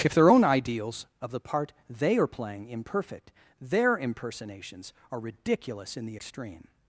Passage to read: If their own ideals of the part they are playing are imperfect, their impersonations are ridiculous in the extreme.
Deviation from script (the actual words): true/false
true